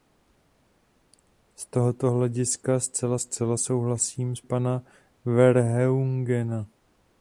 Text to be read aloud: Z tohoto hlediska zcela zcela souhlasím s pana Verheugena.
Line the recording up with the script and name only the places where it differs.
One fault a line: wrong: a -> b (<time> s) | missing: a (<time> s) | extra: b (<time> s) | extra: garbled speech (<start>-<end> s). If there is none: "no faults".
no faults